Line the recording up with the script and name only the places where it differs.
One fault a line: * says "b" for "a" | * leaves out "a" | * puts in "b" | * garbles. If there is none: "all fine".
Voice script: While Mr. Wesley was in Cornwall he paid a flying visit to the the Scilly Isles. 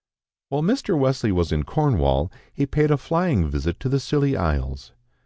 * leaves out "the"